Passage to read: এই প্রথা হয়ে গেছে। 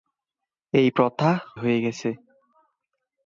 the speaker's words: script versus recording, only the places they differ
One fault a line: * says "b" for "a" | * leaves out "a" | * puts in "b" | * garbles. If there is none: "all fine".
all fine